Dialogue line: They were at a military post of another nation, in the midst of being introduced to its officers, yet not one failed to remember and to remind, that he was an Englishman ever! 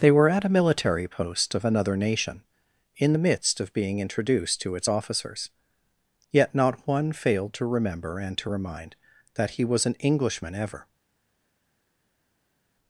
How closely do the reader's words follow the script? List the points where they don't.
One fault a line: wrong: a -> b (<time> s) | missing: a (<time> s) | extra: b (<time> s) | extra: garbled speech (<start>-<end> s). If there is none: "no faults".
no faults